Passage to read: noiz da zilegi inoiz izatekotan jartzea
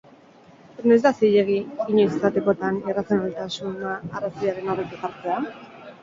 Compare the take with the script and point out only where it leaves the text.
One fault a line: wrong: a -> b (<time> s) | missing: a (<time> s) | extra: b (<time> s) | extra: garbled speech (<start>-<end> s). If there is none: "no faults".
extra: irrazionaltasuna arrazoiaren aurretik (2.9 s)